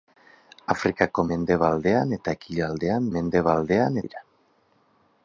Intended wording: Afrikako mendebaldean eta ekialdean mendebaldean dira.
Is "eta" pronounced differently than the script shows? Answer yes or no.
no